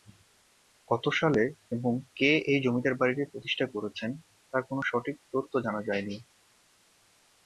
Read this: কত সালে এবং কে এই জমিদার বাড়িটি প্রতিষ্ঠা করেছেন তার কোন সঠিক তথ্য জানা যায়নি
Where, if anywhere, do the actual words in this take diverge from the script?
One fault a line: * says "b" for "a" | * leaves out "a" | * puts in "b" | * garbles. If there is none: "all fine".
all fine